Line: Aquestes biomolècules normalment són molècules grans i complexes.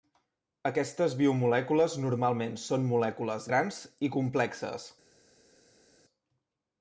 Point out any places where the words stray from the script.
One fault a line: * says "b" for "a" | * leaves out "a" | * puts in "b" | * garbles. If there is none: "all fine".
all fine